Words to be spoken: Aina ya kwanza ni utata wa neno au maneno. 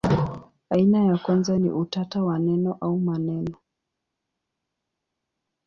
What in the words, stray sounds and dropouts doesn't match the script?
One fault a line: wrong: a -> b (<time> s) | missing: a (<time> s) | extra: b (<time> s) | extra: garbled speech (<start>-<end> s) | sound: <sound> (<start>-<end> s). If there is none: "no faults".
no faults